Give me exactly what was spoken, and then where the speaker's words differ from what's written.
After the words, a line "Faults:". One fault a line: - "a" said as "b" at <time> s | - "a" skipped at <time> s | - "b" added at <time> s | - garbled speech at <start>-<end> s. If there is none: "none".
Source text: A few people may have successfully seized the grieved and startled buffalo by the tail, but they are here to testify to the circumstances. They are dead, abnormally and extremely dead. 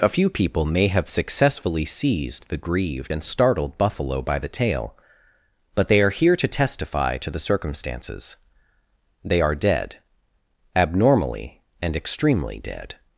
A few people may have successfully seized the grieved and startled buffalo by the tail, but they are here to testify to the circumstances. They are dead, abnormally and extremely dead.
Faults:
none